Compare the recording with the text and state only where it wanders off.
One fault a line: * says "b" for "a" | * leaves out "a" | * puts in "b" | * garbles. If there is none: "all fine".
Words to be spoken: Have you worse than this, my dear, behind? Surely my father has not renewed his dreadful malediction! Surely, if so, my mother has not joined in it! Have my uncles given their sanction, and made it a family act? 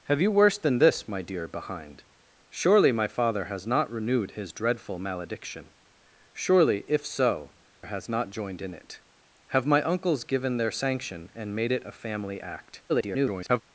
* leaves out "my mother"
* garbles